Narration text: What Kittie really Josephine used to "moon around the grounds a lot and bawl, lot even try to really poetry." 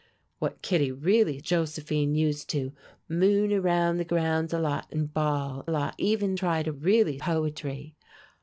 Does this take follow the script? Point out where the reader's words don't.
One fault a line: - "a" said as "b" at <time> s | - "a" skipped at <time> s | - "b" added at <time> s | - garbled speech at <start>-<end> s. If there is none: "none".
none